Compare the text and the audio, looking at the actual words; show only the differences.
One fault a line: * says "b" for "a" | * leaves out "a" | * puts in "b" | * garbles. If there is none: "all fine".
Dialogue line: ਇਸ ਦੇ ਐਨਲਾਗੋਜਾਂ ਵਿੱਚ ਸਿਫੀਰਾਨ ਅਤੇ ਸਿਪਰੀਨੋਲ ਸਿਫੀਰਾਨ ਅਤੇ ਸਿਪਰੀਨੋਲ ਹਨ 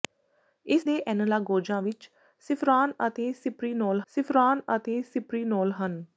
all fine